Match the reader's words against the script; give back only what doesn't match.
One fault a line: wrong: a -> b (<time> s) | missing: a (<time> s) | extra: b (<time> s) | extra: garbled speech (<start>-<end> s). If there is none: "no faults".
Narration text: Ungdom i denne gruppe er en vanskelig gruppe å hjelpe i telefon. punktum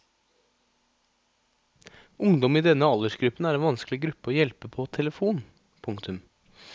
wrong: gruppe -> aldersgruppen (2.9 s)
wrong: i -> på (4.7 s)